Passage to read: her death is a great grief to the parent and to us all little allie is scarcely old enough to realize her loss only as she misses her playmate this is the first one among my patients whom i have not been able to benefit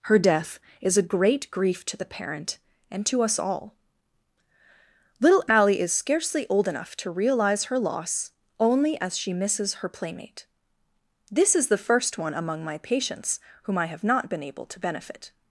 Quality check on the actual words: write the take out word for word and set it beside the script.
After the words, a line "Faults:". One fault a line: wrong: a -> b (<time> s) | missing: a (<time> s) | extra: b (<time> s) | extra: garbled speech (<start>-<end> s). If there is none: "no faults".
her death is a great grief to the parent and to us all little allie is scarcely old enough to realize her loss only as she misses her playmate this is the first one among my patients whom i have not been able to benefit
Faults:
no faults